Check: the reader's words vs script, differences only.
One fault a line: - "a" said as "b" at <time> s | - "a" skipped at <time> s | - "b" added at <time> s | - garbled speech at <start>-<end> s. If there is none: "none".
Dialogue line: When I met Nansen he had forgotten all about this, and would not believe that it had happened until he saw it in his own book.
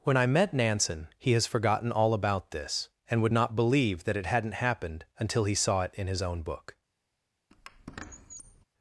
- "had" said as "has" at 1.3 s
- "had" said as "hadn't" at 4.3 s